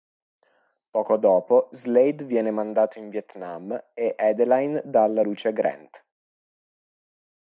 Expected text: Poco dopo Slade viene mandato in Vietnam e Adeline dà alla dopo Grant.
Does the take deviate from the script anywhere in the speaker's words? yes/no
yes